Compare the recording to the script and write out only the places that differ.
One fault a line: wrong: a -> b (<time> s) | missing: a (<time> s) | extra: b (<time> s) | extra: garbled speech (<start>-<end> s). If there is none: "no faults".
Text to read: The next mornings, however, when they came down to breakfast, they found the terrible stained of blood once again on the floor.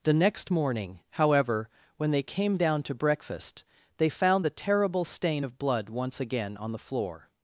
wrong: mornings -> morning (0.5 s)
wrong: stained -> stain (5.0 s)